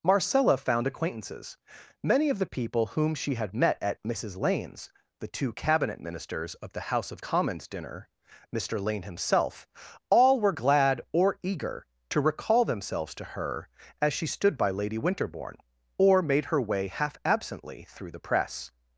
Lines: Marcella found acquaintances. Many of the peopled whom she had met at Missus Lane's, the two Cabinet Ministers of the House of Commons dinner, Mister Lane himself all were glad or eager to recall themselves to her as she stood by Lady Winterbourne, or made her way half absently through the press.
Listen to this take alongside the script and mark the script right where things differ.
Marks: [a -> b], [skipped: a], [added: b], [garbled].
Marcella found acquaintances. Many of the [peopled -> people] whom she had met at Missus Lane's, the two Cabinet Ministers of the House of Commons dinner, Mister Lane himself all were glad or eager to recall themselves to her as she stood by Lady Winterbourne, or made her way half absently through the press.